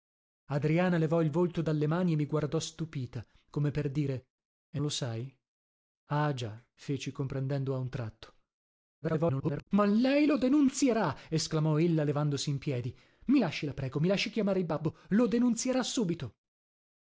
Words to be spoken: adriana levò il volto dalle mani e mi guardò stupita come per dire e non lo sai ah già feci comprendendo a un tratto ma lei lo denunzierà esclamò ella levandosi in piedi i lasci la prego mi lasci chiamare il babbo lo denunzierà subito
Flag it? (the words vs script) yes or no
yes